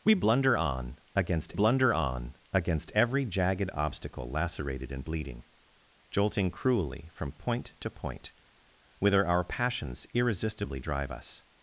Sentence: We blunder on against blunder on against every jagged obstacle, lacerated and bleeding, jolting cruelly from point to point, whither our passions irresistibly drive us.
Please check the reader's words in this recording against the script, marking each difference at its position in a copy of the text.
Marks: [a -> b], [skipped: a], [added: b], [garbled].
We blunder on against blunder on against every jagged obstacle, lacerated and bleeding, jolting cruelly from point to point, whither our passions irresistibly drive us.